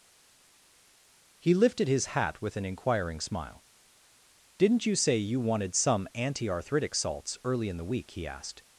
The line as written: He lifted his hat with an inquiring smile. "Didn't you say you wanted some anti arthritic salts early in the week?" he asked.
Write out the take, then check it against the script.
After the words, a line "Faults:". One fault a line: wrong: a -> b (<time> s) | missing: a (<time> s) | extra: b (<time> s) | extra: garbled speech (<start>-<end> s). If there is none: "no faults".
He lifted his hat with an inquiring smile. "Didn't you say you wanted some anti arthritic salts early in the week?" he asked.
Faults:
no faults